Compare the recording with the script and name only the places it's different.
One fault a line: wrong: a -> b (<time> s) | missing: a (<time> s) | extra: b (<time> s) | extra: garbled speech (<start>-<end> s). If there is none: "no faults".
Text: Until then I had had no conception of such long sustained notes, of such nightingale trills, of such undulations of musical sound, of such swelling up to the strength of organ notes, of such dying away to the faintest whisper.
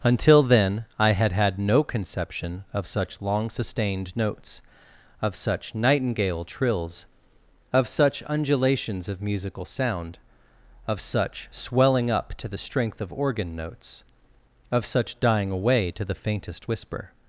no faults